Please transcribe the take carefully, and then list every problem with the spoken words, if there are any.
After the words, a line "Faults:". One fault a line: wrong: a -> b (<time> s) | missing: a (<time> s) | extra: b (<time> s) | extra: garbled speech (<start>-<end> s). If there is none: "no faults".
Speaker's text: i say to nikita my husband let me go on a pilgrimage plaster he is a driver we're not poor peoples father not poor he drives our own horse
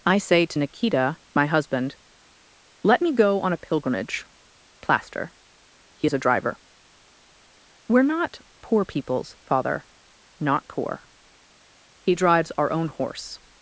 i say to nikita my husband let me go on a pilgrimage plaster he is a driver we're not poor peoples father not poor he drives our own horse
Faults:
no faults